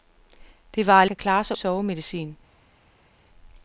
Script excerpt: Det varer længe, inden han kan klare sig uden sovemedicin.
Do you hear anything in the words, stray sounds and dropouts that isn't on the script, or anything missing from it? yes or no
yes